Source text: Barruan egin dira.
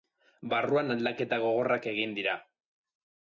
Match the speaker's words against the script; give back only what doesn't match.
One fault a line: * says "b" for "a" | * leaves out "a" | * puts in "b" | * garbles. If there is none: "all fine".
* puts in "aldaketa gogorrak"